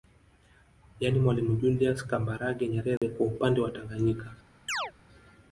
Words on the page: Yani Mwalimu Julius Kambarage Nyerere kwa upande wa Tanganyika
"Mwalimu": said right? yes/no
yes